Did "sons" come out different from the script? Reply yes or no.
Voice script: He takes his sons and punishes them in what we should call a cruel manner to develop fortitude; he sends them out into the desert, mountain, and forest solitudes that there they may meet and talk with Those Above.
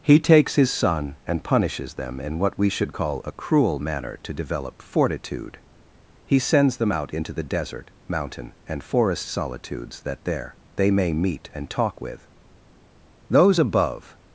yes